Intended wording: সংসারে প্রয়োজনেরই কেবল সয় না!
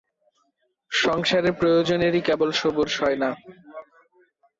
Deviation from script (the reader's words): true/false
true